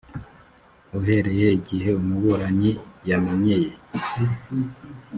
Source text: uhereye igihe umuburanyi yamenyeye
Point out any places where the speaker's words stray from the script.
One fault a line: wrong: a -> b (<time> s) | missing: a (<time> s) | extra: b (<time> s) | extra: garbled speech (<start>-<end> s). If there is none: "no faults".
no faults